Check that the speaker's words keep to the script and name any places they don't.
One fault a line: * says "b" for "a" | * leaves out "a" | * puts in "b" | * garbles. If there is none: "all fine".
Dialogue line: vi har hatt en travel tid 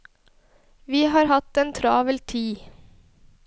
all fine